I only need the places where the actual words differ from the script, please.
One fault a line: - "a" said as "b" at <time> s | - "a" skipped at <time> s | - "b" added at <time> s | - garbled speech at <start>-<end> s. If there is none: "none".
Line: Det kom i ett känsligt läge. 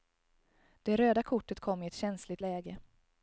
- "röda kortet" added at 0.9 s